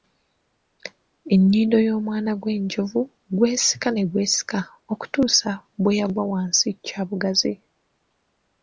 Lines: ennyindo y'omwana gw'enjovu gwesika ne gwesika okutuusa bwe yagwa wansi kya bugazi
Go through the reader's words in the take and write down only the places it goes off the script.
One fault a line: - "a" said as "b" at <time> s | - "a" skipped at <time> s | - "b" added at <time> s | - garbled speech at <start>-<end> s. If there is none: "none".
none